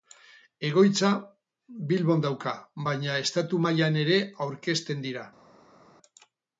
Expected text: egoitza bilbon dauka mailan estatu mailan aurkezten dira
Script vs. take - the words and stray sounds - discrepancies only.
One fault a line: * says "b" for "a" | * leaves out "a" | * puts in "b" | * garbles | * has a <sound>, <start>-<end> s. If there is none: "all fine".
* says "baina" for "mailan"
* puts in "ere"